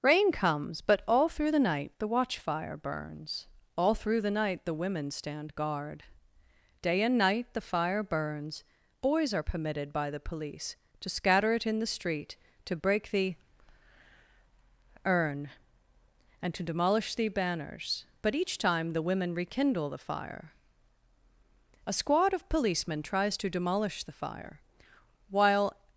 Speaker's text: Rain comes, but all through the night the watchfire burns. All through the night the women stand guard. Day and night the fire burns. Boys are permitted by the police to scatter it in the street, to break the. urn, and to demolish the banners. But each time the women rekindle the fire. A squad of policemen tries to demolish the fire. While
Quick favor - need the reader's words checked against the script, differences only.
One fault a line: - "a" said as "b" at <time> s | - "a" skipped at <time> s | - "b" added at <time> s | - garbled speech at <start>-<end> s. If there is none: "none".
none